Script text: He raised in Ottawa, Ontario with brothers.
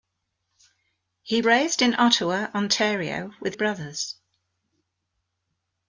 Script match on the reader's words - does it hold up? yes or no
yes